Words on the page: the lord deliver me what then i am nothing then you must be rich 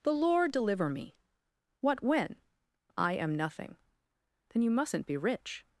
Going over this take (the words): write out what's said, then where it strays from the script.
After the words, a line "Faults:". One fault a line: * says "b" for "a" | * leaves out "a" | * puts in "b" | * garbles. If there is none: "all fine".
the lord deliver me what when i am nothing then you mustn't be rich
Faults:
* says "when" for "then"
* says "mustn't" for "must"